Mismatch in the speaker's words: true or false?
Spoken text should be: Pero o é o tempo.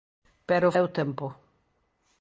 false